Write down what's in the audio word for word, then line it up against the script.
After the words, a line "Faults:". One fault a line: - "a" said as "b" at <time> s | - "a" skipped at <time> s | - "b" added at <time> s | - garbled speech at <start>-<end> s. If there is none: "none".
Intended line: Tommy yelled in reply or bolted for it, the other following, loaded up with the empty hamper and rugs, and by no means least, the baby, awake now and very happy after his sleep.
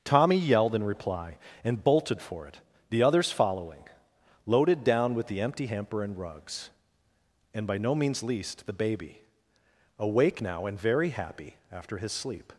Tommy yelled in reply and bolted for it, the others following, loaded down with the empty hamper and rugs, and by no means least, the baby, awake now and very happy after his sleep.
Faults:
- "or" said as "and" at 1.6 s
- "other" said as "others" at 3.0 s
- "up" said as "down" at 4.8 s